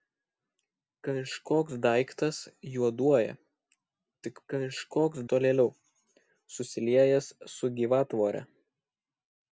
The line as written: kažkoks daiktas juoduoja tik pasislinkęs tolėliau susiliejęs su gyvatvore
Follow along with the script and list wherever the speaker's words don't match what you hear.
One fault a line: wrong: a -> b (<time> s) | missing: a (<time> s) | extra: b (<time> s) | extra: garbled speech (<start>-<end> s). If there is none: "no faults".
wrong: pasislinkęs -> kažkoks (4.5 s)